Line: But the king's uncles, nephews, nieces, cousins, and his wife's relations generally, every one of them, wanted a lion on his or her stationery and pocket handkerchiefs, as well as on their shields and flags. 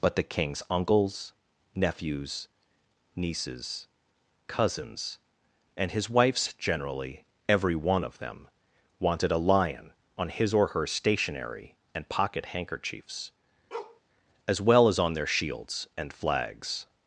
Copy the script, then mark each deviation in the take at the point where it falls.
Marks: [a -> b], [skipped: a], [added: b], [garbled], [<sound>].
But the king's uncles, nephews, nieces, cousins, and his wife's [skipped: relations] generally, every one of them, wanted a lion on his or her stationery and pocket handkerchiefs, [bark] as well as on their shields and flags.